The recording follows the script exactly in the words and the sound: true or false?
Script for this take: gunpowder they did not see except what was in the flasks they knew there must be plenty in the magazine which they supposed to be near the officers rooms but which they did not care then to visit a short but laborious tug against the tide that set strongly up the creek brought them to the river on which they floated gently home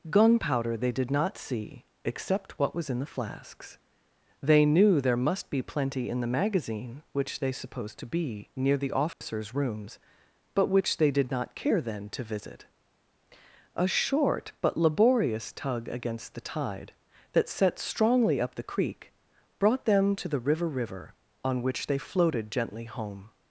false